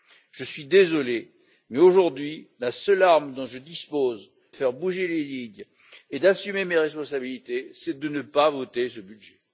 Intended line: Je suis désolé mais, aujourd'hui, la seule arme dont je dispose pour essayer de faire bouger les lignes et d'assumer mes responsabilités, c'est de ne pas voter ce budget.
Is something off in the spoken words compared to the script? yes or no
yes